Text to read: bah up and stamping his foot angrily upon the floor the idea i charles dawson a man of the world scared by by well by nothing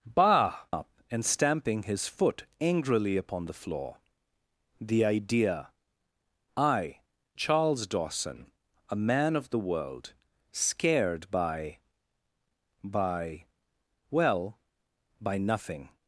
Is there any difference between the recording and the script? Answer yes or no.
no